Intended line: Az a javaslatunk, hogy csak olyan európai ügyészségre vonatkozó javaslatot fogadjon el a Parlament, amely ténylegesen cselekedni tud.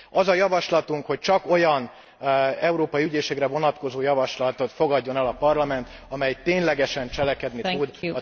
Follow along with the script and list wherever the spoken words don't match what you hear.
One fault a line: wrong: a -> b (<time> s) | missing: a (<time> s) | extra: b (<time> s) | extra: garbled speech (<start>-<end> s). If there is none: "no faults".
no faults